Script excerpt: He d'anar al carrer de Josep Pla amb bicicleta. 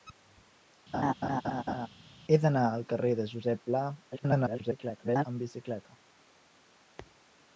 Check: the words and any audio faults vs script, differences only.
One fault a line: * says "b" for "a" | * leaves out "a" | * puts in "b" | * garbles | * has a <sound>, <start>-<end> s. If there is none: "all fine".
* has a laugh, 0.9-1.9 s
* garbles